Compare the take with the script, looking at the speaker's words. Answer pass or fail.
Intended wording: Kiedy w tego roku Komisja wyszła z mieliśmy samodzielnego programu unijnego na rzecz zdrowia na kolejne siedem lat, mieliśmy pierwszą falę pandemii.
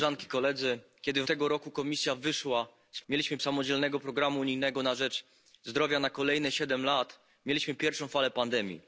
pass